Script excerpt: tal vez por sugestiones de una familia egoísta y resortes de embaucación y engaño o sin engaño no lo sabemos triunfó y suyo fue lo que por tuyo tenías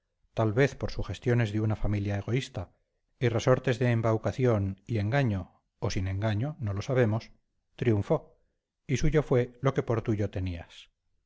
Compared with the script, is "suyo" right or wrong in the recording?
right